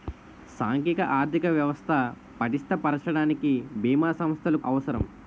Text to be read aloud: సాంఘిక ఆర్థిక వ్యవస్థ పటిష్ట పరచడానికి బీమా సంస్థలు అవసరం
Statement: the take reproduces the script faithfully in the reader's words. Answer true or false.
true